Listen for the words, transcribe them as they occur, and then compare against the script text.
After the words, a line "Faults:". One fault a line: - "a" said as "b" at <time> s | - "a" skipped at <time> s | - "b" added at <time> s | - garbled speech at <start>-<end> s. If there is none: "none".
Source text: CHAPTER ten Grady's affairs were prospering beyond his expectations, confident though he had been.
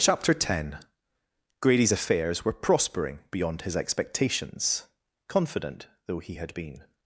CHAPTER ten Grady's affairs were prospering beyond his expectations, confident though he had been.
Faults:
none